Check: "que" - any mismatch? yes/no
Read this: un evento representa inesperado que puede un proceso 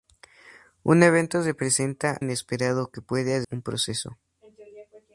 no